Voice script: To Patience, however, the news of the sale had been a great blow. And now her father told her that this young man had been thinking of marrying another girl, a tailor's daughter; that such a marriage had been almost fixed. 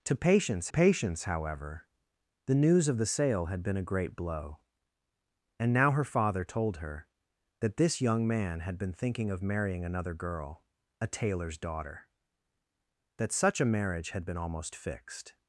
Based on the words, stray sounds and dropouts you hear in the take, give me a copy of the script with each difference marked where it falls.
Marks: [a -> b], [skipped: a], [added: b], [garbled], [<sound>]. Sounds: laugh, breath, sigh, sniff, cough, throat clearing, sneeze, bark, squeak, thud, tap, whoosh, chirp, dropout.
To Patience, [added: Patience] however, the news of the sale had been a great blow. And now her father told her that this young man had been thinking of marrying another girl, a tailor's daughter; that such a marriage had been almost fixed.